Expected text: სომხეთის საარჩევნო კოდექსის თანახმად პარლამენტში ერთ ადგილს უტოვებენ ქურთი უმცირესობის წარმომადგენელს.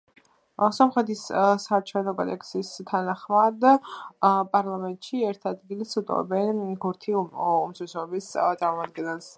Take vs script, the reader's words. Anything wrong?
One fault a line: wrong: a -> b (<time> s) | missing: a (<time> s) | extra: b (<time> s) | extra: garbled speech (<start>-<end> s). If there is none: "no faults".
no faults